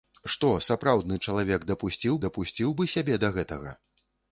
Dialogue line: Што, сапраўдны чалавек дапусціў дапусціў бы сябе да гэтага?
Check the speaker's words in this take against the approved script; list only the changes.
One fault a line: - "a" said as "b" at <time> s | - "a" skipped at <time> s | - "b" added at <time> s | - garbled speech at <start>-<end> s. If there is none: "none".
none